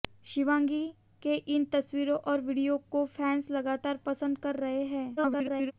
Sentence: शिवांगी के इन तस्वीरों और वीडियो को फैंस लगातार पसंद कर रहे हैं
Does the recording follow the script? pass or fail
fail